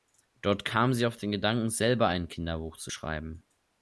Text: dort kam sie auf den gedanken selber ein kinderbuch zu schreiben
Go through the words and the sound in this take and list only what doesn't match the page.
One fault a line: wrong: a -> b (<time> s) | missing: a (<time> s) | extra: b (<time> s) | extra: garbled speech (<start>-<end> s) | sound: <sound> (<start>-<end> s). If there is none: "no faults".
no faults